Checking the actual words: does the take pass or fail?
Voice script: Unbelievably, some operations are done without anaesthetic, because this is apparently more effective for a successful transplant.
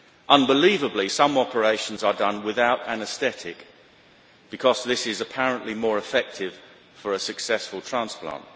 pass